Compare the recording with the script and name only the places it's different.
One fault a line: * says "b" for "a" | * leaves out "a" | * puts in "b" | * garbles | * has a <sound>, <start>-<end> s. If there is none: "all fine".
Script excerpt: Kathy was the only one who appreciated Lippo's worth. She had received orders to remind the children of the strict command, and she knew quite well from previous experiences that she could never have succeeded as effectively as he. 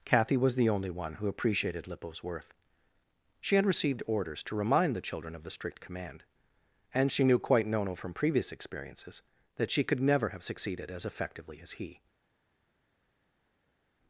* says "nono" for "well"